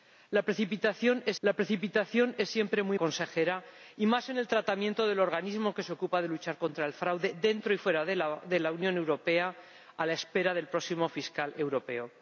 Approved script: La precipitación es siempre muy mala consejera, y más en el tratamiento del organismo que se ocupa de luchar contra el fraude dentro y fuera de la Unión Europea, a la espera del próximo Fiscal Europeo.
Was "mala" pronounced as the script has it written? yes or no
no